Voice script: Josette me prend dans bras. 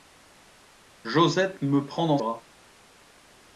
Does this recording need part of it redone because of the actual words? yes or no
no